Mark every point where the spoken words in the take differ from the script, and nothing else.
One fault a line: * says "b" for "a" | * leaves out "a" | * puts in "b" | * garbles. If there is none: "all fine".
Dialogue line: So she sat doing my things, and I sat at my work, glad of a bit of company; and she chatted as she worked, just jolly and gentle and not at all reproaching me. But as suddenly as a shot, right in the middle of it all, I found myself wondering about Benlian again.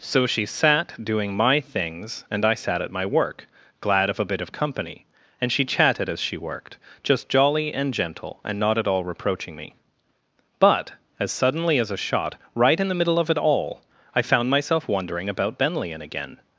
all fine